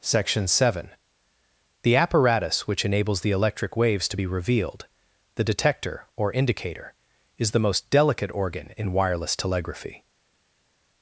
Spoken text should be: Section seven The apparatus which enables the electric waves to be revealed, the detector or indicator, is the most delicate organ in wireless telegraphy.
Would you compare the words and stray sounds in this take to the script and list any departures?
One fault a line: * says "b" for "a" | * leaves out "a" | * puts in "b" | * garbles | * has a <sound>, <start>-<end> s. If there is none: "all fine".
all fine